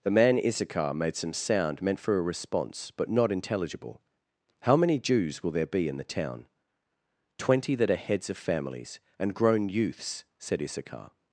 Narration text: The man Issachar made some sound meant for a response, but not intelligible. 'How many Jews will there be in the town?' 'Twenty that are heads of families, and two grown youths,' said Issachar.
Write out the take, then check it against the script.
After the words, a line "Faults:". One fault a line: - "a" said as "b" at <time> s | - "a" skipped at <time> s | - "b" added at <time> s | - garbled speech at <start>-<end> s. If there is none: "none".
The man Issachar made some sound meant for a response, but not intelligible. 'How many Jews will there be in the town?' 'Twenty that are heads of families, and grown youths,' said Issachar.
Faults:
- "two" skipped at 9.3 s